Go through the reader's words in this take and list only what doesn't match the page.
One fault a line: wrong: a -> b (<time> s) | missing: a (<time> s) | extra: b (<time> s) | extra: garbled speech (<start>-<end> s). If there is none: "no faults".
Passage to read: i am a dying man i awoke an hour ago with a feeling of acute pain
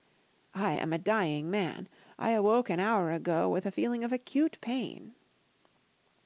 no faults